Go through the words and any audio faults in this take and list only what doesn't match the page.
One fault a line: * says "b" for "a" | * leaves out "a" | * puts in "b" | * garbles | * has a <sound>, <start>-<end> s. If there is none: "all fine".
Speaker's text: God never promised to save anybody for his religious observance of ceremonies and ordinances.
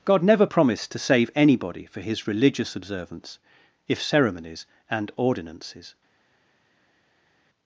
* says "if" for "of"